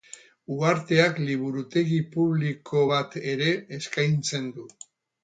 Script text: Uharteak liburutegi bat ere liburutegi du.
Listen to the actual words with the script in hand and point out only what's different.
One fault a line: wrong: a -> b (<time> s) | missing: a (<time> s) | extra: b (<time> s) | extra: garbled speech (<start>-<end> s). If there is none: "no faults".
extra: publiko (2.1 s)
wrong: liburutegi -> eskaintzen (3.8 s)